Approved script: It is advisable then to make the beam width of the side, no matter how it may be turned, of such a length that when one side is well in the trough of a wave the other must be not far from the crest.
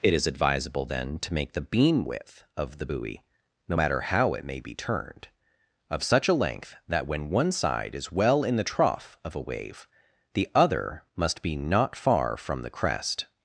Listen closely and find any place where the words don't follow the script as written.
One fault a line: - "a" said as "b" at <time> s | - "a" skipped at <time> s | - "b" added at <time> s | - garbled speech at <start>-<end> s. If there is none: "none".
- "side" said as "buoy" at 2.8 s